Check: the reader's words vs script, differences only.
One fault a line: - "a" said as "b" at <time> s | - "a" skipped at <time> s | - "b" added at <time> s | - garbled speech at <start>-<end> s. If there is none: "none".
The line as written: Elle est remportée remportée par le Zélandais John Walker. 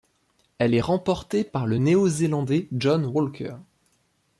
- "remportée" skipped at 1.4 s
- "Néo" added at 1.8 s